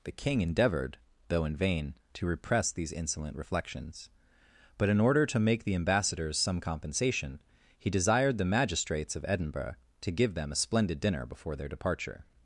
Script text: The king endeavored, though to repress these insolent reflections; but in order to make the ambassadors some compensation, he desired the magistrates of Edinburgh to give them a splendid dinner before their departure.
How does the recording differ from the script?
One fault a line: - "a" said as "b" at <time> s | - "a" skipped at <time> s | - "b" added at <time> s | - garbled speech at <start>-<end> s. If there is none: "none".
- "in vain" added at 1.4 s